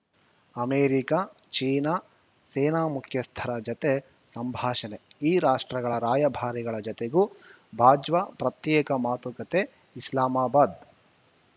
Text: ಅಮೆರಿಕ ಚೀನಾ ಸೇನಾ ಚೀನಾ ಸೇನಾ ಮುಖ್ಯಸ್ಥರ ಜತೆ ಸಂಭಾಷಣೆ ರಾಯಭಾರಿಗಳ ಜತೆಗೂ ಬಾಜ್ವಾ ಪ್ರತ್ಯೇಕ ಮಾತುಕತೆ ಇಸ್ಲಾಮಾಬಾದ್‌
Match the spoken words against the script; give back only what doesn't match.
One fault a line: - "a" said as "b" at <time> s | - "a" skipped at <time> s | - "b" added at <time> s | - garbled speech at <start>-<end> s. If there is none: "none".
- "ಚೀನಾ ಸೇನಾ" skipped at 2.9 s
- "ಈ ರಾಷ್ಟ್ರಗಳ" added at 5.2 s